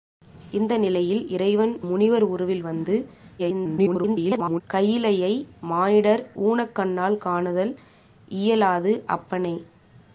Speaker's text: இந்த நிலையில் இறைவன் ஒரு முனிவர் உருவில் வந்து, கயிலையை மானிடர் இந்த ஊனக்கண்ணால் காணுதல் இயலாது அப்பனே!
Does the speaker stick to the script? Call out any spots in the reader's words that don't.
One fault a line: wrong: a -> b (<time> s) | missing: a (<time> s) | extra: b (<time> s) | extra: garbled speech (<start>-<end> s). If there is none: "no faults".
missing: ஒரு (1.8 s)
extra: garbled speech (3.4-4.6 s)
missing: இந்த (6.2 s)